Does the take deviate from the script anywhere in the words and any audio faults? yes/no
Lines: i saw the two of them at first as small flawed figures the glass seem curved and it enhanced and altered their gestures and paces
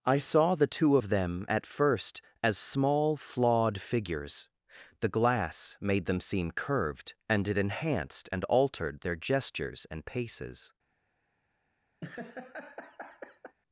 yes